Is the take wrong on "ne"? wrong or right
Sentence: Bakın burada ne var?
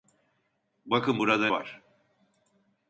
wrong